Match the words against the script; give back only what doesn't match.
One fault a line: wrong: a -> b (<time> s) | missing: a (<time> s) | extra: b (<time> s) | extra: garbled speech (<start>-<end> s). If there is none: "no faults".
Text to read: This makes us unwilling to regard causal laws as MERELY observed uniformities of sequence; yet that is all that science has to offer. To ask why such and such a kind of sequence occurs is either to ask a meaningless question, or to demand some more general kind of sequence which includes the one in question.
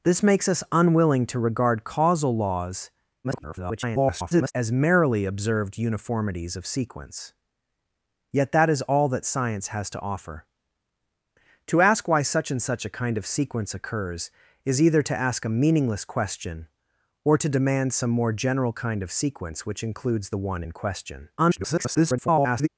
extra: garbled speech (3.2-4.5 s)
extra: garbled speech (21.4-22.7 s)